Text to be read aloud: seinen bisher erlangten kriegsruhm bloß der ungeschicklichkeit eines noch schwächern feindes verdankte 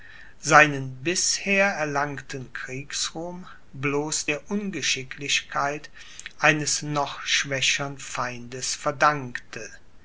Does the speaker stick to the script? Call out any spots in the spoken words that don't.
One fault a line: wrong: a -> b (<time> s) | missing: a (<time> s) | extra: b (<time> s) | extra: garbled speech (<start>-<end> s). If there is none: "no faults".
no faults